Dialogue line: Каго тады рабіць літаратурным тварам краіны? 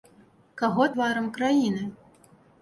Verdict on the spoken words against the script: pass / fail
fail